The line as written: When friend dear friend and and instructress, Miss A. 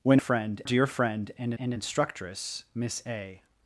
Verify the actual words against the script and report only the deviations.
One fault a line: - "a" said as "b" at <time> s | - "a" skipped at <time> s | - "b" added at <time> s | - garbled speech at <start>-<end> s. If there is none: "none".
none